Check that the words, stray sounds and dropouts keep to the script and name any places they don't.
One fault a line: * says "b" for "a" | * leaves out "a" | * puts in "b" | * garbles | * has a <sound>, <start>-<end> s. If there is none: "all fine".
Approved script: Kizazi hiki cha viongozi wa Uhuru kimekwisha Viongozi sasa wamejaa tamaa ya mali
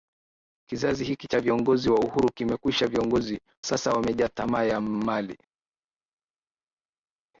all fine